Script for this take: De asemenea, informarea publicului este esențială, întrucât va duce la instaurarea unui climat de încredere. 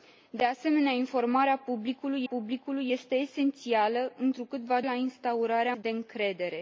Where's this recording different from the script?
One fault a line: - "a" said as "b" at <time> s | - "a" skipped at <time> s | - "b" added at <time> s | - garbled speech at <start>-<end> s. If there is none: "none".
- "publicului" added at 2.2 s
- "duce" skipped at 4.8 s
- "unui climat" skipped at 5.8 s